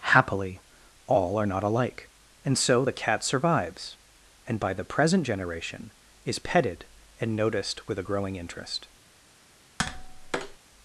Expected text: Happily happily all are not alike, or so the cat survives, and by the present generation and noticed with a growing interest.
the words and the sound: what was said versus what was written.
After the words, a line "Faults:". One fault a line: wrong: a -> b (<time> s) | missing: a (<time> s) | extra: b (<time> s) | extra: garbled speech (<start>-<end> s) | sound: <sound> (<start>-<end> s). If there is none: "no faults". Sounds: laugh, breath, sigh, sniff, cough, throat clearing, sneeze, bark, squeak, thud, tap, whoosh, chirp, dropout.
Happily all are not alike, and so the cat survives, and by the present generation is petted and noticed with a growing interest.
Faults:
missing: happily (0.6 s)
wrong: or -> and (2.4 s)
extra: is petted (6.2 s)
sound: tap (9.8-10.6 s)